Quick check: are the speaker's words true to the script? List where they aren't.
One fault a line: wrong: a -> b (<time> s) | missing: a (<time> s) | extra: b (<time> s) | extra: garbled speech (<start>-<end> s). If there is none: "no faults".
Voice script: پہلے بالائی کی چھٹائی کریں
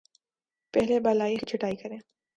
no faults